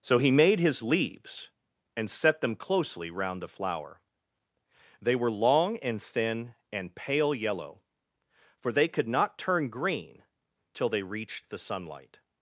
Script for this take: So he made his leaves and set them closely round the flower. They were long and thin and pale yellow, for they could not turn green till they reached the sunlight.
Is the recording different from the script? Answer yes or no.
no